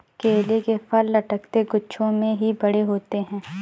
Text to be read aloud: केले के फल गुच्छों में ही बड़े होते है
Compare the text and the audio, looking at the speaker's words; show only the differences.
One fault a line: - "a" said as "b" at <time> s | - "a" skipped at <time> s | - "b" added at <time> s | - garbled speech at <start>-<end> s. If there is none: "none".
- "लटकते" added at 1.1 s